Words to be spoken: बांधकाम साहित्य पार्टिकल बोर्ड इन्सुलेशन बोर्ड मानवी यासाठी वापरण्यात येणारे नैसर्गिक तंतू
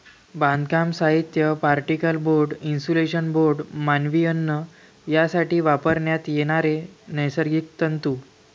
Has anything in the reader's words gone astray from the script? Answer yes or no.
yes